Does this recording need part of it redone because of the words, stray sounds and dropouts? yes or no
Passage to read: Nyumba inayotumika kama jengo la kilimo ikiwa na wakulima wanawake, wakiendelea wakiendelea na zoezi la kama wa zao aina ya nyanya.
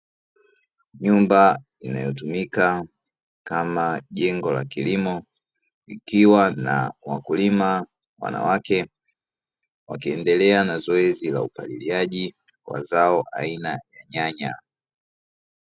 yes